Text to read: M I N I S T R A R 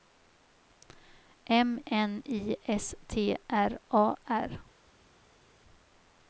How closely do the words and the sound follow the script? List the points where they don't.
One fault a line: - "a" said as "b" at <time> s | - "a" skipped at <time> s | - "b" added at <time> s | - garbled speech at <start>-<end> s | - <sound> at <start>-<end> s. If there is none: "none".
- "I" skipped at 1.8 s